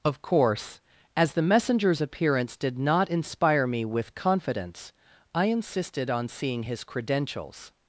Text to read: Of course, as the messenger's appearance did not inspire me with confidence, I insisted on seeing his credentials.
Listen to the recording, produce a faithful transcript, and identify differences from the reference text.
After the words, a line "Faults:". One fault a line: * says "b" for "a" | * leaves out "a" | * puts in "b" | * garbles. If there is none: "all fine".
Of course, as the messenger's appearance did not inspire me with confidence, I insisted on seeing his credentials.
Faults:
all fine